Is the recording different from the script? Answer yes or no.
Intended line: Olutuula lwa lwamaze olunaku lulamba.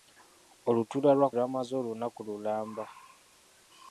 no